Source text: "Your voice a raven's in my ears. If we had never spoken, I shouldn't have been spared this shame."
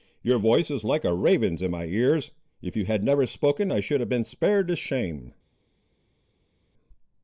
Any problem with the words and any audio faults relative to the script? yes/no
yes